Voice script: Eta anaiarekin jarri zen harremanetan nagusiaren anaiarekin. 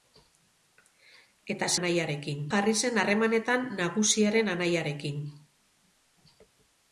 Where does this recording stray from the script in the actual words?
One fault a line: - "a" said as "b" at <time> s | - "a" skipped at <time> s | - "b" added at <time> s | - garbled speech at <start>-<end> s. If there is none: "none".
none